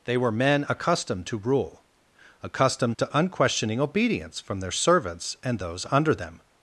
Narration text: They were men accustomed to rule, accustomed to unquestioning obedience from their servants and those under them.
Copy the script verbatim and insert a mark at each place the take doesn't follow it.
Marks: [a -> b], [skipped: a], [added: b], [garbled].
They were men accustomed to rule, accustomed to unquestioning obedience from their servants and those under them.